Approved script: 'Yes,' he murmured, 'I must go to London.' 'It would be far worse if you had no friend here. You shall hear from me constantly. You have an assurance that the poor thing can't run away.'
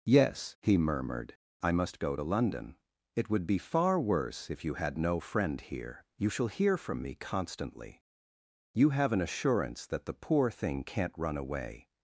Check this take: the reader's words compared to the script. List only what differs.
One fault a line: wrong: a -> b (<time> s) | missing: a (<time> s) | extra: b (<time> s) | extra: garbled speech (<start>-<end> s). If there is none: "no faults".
no faults